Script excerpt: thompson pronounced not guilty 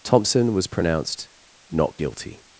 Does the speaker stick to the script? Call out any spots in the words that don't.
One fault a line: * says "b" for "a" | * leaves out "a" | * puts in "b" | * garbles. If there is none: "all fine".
* puts in "was"